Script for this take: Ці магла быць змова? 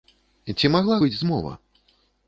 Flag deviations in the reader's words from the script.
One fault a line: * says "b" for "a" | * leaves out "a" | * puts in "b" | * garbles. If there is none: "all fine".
all fine